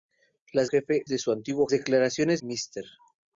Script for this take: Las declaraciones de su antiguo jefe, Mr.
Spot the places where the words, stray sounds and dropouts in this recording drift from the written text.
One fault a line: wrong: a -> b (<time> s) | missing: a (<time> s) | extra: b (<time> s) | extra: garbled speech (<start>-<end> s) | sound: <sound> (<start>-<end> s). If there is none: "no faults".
wrong: declaraciones -> jefe (0.7 s)
wrong: jefe -> declaraciones (1.7 s)